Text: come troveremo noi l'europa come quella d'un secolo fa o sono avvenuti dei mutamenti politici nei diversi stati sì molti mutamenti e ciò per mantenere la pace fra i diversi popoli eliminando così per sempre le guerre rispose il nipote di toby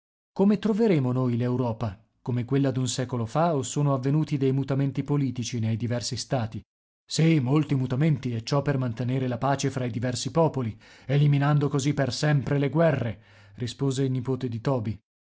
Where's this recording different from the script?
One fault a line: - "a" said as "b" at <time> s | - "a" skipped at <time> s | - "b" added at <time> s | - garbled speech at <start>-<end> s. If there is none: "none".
none